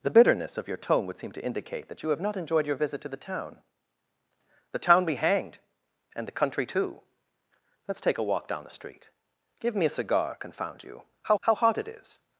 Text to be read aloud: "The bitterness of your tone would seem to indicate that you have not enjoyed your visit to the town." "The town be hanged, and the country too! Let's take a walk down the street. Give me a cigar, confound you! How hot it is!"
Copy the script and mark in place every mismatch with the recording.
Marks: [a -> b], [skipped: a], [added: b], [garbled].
"The bitterness of your tone would seem to indicate that you have not enjoyed your visit to the town." "The town be hanged, and the country too! Let's take a walk down the street. Give me a cigar, confound you! How [added: how] hot it is!"